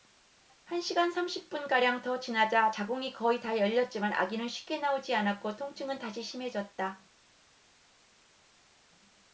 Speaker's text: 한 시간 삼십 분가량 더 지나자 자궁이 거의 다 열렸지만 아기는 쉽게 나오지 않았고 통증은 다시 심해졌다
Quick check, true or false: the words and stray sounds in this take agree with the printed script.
true